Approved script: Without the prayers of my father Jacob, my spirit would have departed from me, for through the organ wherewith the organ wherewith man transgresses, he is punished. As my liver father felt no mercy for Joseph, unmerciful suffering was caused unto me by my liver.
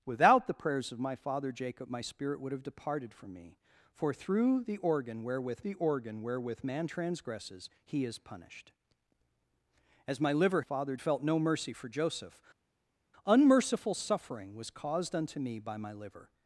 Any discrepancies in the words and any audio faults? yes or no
no